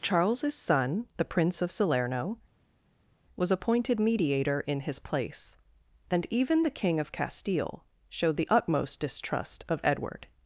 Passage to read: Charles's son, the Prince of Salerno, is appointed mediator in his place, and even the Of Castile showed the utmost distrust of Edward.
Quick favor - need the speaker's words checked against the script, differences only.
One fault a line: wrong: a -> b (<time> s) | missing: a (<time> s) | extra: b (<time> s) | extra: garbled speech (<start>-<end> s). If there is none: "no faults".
wrong: is -> was (3.4 s)
extra: King (6.7 s)